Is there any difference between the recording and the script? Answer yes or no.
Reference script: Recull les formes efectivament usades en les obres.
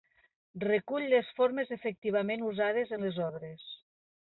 no